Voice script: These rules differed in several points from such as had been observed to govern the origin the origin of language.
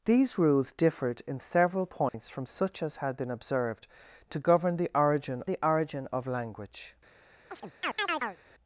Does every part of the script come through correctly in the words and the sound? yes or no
no